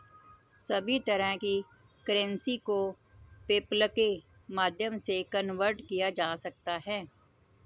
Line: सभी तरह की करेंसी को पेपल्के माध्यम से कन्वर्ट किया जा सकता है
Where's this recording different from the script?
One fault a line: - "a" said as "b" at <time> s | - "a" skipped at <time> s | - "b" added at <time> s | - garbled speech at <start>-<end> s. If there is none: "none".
none